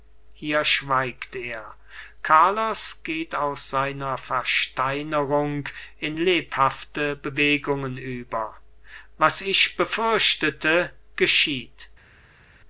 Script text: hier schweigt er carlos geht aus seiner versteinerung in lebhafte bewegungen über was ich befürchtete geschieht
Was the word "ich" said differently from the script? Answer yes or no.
no